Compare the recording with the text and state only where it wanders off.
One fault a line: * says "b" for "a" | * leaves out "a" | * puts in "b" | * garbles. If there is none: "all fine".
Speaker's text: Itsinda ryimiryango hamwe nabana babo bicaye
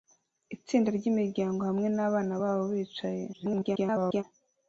* garbles